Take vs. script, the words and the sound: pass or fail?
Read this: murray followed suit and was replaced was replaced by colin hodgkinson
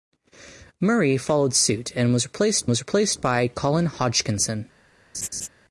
fail